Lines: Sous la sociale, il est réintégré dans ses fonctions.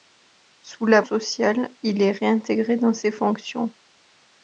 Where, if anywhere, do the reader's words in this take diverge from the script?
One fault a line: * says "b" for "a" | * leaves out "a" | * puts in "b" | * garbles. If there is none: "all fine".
all fine